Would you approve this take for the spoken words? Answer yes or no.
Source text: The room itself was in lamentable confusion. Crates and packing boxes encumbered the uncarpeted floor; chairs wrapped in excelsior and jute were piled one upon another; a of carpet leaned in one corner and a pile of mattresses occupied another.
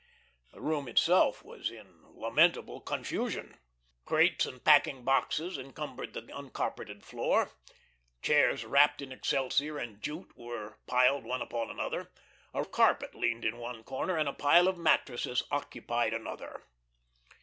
yes